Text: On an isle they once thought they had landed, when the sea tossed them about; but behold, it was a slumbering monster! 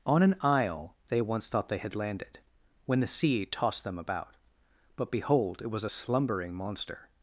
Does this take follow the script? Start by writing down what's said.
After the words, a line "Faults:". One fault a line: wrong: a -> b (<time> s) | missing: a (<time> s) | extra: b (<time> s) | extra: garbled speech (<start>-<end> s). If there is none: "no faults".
On an isle they once thought they had landed, when the sea tossed them about; but behold, it was a slumbering monster!
Faults:
no faults